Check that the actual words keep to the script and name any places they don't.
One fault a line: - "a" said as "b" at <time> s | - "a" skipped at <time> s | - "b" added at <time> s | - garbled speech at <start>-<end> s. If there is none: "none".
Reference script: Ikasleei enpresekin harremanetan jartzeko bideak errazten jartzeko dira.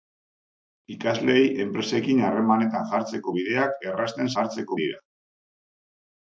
none